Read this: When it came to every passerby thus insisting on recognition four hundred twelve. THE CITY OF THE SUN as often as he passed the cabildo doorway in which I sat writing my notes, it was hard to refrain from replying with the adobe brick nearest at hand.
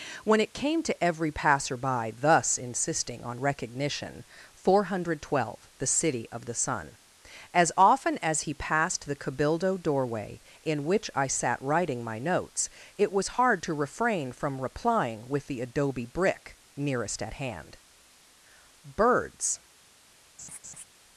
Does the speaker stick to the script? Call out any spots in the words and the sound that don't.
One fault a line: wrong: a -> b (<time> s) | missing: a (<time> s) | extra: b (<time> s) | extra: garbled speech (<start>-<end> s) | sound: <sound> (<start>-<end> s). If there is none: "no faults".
extra: Birds (18.8 s)
sound: laugh (20.4-20.8 s)